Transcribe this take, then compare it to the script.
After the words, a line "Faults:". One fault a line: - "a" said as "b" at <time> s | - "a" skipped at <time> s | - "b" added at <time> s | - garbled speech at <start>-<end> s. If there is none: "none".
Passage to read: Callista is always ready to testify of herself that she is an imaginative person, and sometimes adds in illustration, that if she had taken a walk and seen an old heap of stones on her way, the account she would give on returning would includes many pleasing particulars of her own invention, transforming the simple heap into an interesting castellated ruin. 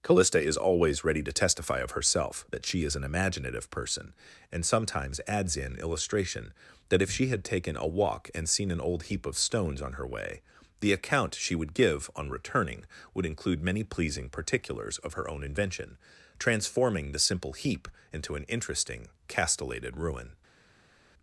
Callista is always ready to testify of herself that she is an imaginative person, and sometimes adds in illustration, that if she had taken a walk and seen an old heap of stones on her way, the account she would give on returning would include many pleasing particulars of her own invention, transforming the simple heap into an interesting castellated ruin.
Faults:
- "includes" said as "include" at 13.3 s